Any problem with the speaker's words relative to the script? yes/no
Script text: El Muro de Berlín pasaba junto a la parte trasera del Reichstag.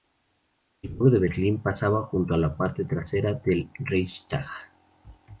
no